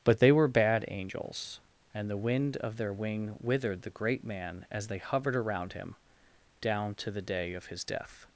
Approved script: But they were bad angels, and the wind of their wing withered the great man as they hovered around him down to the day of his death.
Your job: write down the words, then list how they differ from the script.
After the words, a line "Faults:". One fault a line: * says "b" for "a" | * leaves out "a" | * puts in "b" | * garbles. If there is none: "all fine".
But they were bad angels, and the wind of their wing withered the great man as they hovered around him down to the day of his death.
Faults:
all fine